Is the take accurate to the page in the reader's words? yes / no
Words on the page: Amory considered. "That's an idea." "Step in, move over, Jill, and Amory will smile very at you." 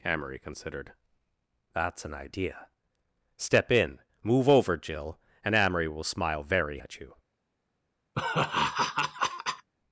yes